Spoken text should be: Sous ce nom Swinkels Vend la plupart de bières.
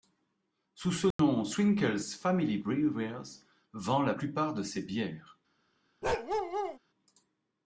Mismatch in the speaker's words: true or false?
true